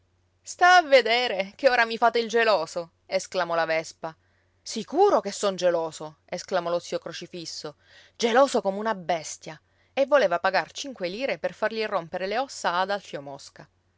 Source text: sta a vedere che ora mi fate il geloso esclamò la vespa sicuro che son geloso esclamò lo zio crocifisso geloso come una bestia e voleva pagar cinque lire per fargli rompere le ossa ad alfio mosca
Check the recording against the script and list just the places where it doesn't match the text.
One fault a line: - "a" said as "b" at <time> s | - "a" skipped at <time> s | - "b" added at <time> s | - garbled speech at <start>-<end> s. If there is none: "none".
none